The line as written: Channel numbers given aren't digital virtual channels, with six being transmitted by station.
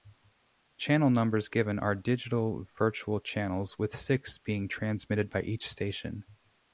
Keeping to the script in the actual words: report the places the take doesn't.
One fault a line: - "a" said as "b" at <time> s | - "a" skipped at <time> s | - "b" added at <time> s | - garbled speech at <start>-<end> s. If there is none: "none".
- "aren't" said as "are" at 1.8 s
- "each" added at 5.4 s